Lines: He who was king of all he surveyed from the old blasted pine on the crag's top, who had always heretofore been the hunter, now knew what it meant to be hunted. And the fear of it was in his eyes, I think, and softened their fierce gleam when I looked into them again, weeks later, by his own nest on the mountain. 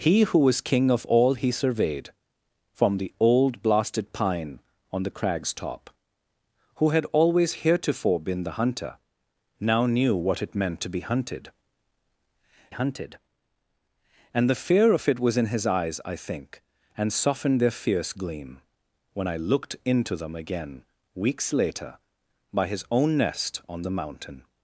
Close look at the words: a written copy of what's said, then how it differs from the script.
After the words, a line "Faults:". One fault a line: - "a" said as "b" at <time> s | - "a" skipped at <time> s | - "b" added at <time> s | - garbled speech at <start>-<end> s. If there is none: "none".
He who was king of all he surveyed from the old blasted pine on the crag's top, who had always heretofore been the hunter, now knew what it meant to be hunted hunted. And the fear of it was in his eyes, I think, and softened their fierce gleam when I looked into them again, weeks later, by his own nest on the mountain.
Faults:
- "hunted" added at 12.7 s